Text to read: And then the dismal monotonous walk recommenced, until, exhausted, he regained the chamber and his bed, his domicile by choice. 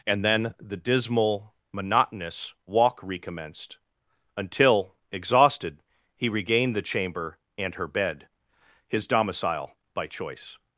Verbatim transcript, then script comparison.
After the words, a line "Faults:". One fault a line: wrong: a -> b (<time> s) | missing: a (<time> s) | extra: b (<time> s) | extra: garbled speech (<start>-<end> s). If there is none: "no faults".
And then the dismal monotonous walk recommenced, until, exhausted, he regained the chamber and her bed, his domicile by choice.
Faults:
wrong: his -> her (7.8 s)